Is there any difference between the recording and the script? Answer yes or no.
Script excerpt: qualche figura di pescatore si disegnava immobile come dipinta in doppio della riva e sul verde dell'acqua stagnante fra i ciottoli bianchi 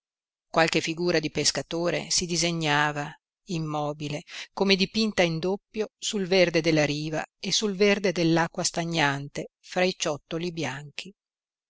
yes